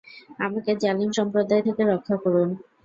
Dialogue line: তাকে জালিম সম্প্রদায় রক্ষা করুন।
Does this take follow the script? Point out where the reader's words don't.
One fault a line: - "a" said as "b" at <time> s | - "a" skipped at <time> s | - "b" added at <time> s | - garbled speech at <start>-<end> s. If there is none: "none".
- "তাকে" said as "আমাকে" at 0.4 s
- "থেকে" added at 1.7 s